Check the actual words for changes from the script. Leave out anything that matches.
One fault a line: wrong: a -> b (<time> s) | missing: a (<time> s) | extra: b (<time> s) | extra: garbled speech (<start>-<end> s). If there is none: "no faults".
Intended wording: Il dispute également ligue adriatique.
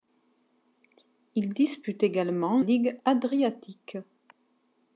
no faults